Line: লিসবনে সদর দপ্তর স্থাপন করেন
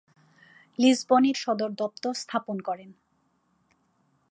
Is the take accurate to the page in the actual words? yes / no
yes